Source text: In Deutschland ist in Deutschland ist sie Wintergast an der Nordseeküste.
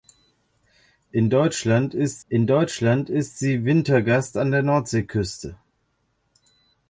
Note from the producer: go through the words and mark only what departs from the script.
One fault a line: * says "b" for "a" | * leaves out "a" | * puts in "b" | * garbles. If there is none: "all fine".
all fine